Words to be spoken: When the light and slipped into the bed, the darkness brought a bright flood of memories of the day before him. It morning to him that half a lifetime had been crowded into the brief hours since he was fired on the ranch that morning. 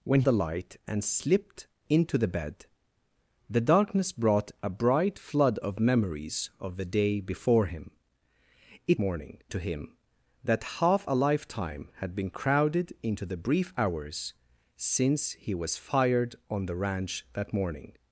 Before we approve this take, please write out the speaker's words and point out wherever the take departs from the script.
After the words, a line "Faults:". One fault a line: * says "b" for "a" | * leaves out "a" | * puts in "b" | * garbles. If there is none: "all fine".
When the light and slipped into the bed, the darkness brought a bright flood of memories of the day before him. It morning to him that half a lifetime had been crowded into the brief hours since he was fired on the ranch that morning.
Faults:
all fine